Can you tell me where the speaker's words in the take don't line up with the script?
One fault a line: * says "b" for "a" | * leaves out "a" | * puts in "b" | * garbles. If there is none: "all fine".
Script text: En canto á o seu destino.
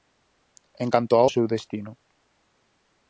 all fine